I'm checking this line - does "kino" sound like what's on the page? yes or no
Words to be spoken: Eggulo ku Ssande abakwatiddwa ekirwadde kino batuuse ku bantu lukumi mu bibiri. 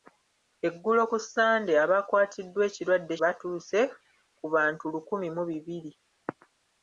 no